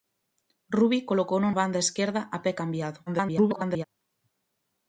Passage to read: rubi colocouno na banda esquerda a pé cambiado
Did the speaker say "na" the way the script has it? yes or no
no